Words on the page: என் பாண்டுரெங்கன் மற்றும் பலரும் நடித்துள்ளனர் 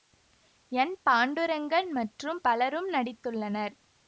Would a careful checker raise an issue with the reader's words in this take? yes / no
no